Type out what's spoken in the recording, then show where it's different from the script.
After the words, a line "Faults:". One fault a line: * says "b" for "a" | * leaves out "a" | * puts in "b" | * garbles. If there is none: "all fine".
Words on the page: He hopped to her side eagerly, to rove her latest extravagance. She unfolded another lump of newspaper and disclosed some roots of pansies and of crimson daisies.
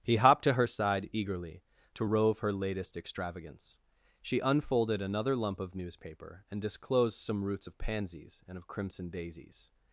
He hopped to her side eagerly, to rove her latest extravagance. She unfolded another lump of newspaper and disclosed some roots of pansies and of crimson daisies.
Faults:
all fine